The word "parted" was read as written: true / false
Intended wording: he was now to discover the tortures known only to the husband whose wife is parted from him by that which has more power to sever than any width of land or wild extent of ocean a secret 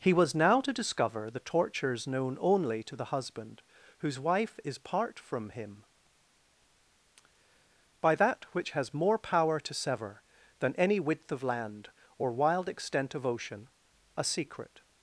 false